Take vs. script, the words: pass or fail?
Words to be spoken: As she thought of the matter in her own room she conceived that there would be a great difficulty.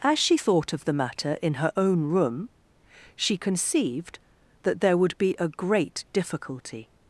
pass